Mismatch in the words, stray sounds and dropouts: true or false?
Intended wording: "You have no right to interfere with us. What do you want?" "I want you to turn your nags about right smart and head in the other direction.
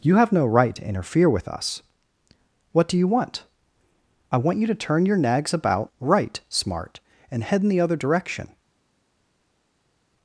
false